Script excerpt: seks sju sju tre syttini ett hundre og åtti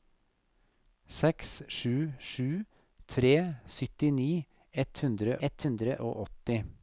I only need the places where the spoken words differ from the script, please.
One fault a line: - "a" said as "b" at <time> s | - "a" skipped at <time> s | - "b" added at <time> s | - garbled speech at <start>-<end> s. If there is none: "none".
- "ett hundre" added at 5.5 s